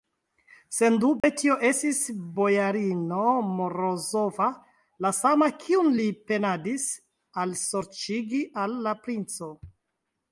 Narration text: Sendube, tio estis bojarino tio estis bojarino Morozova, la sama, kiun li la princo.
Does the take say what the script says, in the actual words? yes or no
no